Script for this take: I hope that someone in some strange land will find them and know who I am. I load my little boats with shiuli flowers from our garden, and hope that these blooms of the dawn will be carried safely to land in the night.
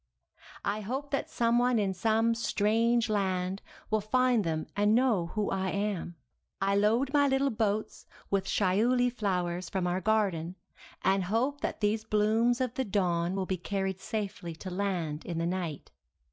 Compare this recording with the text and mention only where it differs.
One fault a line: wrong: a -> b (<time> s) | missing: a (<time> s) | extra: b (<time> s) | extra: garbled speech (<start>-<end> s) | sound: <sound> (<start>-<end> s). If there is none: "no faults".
no faults